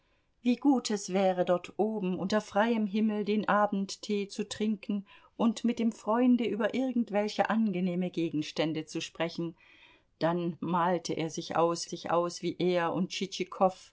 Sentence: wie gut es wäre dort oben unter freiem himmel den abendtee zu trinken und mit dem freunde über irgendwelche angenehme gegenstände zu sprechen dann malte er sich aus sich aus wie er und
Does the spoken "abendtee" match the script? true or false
true